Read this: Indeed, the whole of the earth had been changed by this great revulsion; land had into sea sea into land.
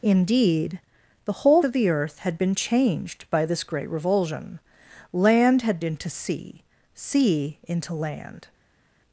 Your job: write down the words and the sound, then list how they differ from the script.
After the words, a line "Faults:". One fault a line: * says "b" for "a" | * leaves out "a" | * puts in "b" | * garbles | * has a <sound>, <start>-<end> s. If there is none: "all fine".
Indeed, the whole of the earth had been changed by this great revulsion; land had into sea sea into land.
Faults:
all fine